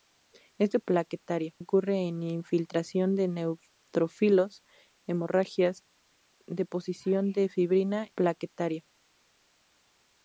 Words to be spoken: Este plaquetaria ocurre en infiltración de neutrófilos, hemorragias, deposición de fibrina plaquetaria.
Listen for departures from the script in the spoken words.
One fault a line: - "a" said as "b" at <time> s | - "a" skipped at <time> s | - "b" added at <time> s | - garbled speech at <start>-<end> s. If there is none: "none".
none